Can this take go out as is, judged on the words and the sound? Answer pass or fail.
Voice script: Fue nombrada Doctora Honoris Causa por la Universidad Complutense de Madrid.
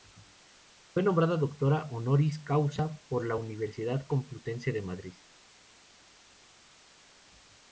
pass